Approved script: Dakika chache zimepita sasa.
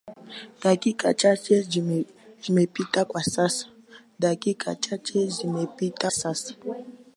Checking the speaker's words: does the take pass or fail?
pass